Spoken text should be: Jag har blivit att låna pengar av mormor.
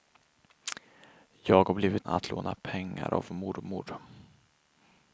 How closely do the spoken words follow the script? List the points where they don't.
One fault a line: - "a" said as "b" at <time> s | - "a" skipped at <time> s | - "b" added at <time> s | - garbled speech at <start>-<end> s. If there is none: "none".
none